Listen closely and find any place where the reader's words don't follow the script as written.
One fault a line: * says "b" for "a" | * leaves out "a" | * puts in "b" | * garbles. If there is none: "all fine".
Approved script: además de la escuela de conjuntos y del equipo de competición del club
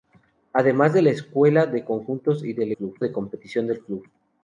* says "club" for "equipo"